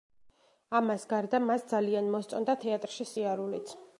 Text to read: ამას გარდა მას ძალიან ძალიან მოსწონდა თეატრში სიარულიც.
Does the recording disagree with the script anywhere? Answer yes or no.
yes